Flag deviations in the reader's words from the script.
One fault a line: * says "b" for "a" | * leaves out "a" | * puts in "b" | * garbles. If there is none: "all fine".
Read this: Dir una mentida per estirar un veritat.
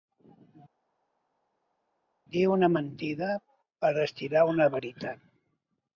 * says "una" for "un"